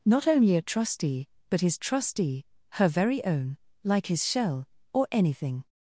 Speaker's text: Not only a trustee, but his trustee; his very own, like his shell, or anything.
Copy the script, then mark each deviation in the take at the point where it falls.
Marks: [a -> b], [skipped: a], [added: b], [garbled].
Not only a trustee, but his trustee; [his -> her] very own, like his shell, or anything.